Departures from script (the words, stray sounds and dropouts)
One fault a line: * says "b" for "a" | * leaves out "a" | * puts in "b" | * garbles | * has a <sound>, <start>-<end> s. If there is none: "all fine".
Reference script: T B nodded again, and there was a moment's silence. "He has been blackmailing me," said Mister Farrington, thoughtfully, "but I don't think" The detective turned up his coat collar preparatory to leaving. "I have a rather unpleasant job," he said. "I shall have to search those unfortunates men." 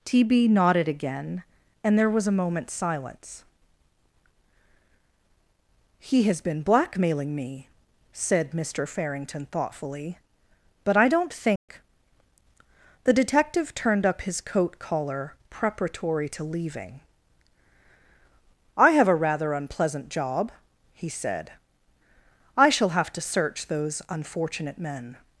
* has a dropout, 11.6-11.7 s
* says "unfortunate" for "unfortunates"